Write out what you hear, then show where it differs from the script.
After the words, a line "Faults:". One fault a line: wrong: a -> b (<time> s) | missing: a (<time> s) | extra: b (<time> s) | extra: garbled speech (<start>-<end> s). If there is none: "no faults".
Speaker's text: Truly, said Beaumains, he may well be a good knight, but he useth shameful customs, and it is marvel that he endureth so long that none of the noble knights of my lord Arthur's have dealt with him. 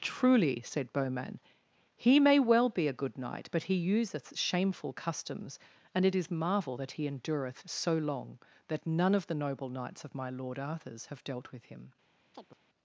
Truly, said Beaumains, he may well be a good knight, but he useth shameful customs, and it is marvel that he endureth so long that none of the noble knights of my lord Arthur's have dealt with him.
Faults:
no faults